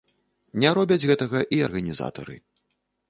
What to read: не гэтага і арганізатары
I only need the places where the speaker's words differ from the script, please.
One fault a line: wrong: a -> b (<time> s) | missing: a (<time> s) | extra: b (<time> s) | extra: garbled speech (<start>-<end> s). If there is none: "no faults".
extra: робяць (0.8 s)